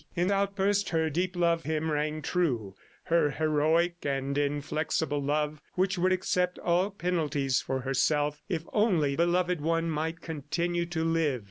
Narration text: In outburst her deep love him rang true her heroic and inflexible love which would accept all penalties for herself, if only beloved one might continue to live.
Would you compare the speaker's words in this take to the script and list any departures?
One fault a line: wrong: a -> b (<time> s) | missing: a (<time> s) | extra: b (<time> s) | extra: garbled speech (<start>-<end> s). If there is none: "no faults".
no faults